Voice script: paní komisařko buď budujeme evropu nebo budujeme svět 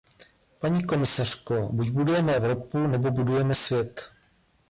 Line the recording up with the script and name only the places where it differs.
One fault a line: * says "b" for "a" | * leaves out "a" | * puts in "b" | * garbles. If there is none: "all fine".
all fine